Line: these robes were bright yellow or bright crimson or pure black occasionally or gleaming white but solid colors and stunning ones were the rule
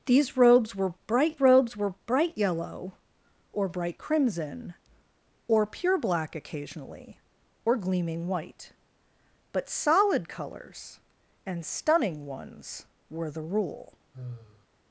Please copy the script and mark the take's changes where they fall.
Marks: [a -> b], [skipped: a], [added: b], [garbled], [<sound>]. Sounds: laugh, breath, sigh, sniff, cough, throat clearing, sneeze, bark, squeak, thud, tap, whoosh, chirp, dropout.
these robes were bright [added: robes were bright] yellow or bright crimson or pure black occasionally or gleaming white but solid colors and stunning ones were the rule [sigh]